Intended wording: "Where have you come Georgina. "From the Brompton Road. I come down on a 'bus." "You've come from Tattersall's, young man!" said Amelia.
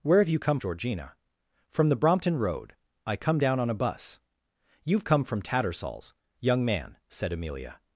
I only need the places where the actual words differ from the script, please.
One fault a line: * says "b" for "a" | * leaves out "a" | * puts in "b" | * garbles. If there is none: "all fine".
all fine